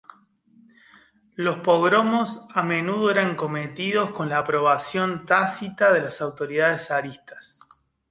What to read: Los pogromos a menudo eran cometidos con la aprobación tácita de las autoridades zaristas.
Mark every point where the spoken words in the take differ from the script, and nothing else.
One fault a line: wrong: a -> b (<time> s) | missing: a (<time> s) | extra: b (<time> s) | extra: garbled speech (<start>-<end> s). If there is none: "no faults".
no faults